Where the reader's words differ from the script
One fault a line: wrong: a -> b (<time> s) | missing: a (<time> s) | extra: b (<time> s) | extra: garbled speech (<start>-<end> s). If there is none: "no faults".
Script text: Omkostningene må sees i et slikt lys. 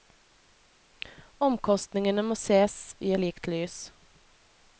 missing: et (3.1 s)